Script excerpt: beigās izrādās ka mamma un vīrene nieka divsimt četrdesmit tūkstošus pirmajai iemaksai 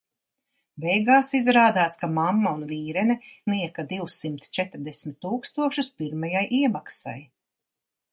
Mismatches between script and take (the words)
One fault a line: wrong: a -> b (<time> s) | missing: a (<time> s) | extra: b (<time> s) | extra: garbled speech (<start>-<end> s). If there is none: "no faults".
no faults